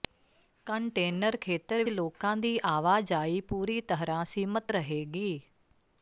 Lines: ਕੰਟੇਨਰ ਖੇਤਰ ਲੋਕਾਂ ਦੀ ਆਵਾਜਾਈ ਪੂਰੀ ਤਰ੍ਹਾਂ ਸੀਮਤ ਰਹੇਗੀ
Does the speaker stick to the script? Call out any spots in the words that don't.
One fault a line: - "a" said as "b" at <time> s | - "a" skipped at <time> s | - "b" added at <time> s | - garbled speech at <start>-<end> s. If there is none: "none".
none